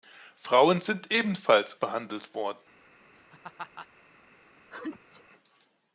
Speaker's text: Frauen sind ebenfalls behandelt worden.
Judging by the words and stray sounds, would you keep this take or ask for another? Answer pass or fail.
fail